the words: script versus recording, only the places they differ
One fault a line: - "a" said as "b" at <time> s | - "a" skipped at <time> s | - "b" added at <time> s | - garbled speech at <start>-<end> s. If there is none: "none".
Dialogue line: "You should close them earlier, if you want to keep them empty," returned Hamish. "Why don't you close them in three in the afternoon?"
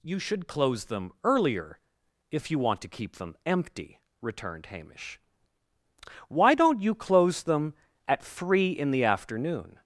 - "in" said as "at" at 8.1 s